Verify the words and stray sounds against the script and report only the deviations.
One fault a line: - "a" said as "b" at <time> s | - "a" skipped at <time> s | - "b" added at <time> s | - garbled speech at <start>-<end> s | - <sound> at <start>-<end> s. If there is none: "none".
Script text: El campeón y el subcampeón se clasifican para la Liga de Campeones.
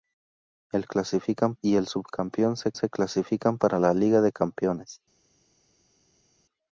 - "campeón" said as "clasifican" at 0.9 s
- "se" added at 2.7 s